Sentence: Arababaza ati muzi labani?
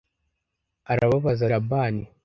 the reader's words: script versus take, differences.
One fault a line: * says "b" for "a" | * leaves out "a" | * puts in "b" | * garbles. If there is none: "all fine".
* leaves out "ati muzi"